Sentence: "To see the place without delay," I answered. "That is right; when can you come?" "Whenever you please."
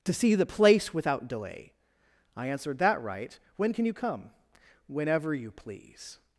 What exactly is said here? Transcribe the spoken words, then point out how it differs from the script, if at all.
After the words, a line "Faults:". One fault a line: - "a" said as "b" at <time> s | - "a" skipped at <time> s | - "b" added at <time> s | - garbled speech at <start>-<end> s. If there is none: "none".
"To see the place without delay," I answered. "That right; when can you come?" "Whenever you please."
Faults:
- "is" skipped at 3.0 s